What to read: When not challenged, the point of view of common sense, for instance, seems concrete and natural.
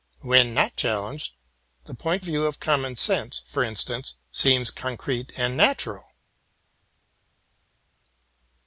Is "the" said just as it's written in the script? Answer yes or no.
yes